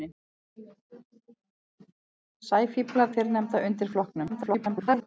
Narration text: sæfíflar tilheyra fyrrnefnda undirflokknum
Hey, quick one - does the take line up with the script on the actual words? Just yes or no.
no